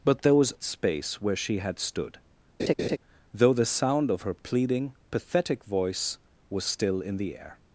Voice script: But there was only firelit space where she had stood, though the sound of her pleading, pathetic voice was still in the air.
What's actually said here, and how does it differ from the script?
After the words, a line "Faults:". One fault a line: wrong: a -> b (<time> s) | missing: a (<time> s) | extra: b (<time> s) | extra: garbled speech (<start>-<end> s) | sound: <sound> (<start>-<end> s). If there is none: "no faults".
But there was space where she had stood, though the sound of her pleading, pathetic voice was still in the air.
Faults:
missing: only firelit (0.5 s)
sound: laugh (2.6-3.0 s)